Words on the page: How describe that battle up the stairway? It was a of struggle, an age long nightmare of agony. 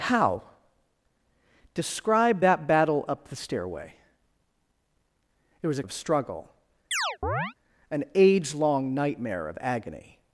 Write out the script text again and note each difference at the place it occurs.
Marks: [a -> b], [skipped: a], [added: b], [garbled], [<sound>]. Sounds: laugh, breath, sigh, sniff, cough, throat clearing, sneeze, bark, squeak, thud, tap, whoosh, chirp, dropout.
How describe that battle up the stairway? It was a of struggle, [chirp] an age long nightmare of agony.